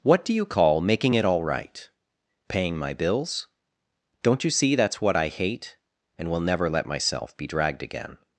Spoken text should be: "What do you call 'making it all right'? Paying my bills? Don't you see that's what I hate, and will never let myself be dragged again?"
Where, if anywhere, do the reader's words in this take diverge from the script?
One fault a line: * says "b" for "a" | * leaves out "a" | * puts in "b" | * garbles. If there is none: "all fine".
all fine